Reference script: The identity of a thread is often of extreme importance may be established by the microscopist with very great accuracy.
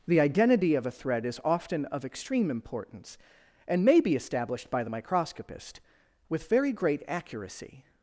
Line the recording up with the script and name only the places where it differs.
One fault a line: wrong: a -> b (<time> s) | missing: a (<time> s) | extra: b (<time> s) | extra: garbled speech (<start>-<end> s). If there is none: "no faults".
extra: and (3.7 s)